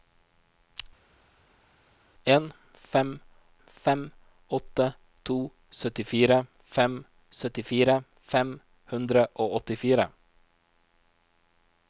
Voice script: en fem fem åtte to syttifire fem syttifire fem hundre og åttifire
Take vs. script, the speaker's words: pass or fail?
pass